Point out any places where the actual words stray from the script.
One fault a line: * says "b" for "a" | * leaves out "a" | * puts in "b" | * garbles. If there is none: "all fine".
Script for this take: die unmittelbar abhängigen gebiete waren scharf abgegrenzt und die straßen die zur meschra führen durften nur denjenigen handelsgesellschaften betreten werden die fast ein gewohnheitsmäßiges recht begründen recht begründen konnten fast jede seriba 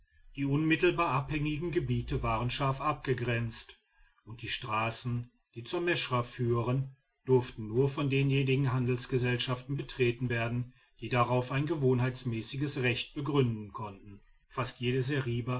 * puts in "von"
* says "darauf" for "fast"
* leaves out "recht begründen"